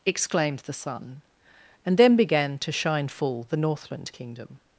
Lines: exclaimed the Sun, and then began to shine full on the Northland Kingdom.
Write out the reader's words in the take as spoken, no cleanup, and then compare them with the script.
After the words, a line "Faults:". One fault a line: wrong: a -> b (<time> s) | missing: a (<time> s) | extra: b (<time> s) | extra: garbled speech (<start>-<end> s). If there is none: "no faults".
exclaimed the Sun, and then began to shine full the Northland Kingdom.
Faults:
missing: on (3.5 s)